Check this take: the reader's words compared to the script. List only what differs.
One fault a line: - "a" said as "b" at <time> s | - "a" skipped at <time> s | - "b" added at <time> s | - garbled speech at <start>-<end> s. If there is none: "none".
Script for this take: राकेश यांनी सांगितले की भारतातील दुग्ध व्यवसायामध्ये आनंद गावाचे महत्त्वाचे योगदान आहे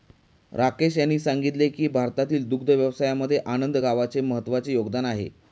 none